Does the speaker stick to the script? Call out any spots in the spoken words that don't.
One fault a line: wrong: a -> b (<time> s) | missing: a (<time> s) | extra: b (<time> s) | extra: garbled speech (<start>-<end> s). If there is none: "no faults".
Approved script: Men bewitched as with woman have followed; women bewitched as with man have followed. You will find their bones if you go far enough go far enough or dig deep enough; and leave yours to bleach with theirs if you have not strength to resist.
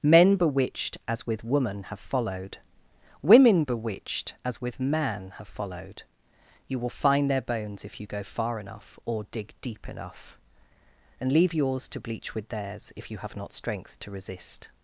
missing: go far enough (9.0 s)